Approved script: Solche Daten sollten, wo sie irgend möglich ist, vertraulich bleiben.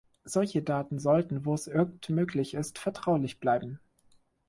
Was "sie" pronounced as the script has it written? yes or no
no